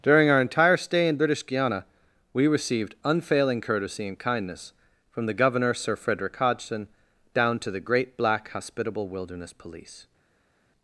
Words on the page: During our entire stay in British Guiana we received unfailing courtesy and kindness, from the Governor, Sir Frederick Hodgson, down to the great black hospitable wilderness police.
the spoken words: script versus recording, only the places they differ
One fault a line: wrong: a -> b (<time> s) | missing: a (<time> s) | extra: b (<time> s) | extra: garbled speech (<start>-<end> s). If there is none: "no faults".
no faults